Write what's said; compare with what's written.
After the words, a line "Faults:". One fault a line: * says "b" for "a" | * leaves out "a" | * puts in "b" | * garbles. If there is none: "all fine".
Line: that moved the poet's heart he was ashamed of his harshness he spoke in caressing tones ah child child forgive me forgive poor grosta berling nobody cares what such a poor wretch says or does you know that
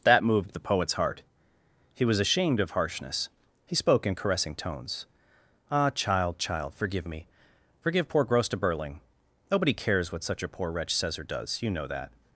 that moved the poet's heart he was ashamed of harshness he spoke in caressing tones ah child child forgive me forgive poor grosta berling nobody cares what such a poor wretch says or does you know that
Faults:
* leaves out "his"